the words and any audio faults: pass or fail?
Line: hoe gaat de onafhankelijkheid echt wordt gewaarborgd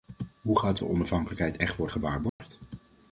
fail